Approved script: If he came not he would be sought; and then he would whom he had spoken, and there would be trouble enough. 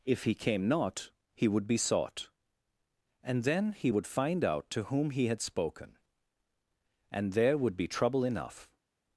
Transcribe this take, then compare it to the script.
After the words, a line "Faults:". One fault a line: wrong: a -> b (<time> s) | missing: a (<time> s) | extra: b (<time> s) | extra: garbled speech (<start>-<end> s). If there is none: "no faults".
If he came not he would be sought; and then he would find out to whom he had spoken, and there would be trouble enough.
Faults:
extra: find out to (4.1 s)